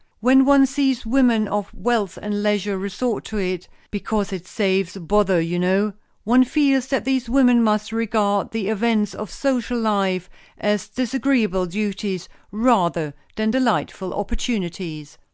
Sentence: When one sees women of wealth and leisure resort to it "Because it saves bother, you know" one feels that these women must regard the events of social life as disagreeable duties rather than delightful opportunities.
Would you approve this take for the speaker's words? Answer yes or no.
yes